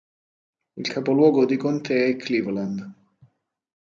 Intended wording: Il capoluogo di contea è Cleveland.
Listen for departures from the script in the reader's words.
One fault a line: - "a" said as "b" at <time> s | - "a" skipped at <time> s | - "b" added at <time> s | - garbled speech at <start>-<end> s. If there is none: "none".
none